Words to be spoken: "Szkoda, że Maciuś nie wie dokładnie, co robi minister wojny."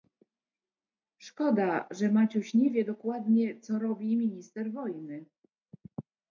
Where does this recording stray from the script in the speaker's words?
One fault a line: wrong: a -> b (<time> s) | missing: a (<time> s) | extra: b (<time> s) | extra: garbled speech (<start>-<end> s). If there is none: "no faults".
no faults